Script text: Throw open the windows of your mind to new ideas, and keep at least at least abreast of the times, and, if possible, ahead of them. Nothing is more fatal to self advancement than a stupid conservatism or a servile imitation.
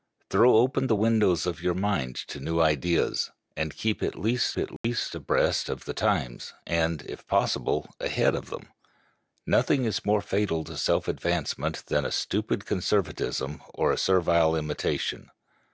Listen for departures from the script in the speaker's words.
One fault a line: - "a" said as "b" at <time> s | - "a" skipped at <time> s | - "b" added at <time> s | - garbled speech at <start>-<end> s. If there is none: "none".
none